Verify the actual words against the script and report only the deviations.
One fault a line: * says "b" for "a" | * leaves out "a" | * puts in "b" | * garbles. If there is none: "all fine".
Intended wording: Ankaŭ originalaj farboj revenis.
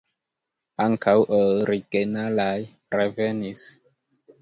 * leaves out "farboj"